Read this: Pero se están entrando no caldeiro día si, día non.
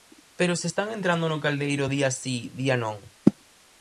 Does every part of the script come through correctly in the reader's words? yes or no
yes